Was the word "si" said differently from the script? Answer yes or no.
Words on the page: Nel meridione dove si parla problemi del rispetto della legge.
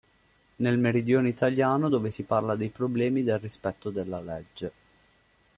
no